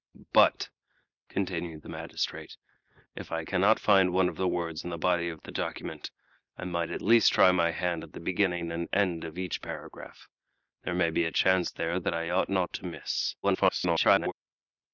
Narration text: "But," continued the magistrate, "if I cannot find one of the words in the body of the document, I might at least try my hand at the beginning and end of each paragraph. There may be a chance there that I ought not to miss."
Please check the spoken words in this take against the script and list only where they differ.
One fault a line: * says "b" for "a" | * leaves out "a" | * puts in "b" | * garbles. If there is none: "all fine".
* garbles